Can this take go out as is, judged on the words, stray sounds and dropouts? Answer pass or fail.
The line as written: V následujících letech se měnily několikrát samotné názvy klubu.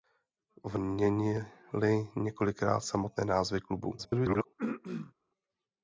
fail